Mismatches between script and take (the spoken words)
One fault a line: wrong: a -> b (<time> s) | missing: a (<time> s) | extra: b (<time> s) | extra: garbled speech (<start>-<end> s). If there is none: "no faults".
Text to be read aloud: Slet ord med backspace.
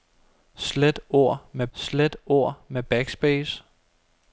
extra: slet ord med (1.7 s)